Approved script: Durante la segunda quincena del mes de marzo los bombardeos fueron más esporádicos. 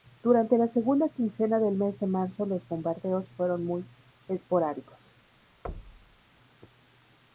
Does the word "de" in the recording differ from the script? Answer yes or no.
no